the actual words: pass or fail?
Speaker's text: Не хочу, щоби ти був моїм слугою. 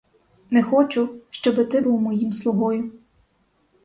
pass